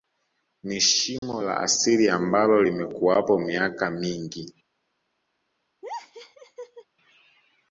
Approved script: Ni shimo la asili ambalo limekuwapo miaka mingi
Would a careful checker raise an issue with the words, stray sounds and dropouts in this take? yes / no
yes